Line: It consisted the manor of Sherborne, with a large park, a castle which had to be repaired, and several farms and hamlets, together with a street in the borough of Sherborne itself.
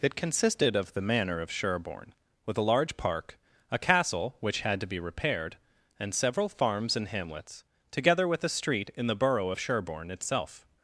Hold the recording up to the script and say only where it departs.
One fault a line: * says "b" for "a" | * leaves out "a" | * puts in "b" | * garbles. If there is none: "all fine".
* puts in "of"